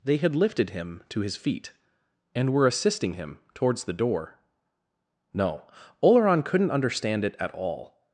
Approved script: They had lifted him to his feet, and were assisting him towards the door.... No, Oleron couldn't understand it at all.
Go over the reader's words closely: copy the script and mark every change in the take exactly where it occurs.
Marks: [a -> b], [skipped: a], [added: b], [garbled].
They had lifted him to his feet, and were assisting him towards the door.... No, Oleron couldn't understand it at all.